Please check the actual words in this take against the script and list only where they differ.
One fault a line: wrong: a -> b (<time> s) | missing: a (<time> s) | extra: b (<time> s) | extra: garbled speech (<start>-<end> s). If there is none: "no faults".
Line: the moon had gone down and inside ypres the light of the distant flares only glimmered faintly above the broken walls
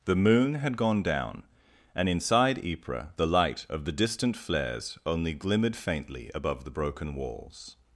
no faults